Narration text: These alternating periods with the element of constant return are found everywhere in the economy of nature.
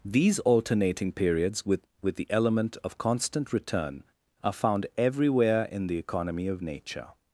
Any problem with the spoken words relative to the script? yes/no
yes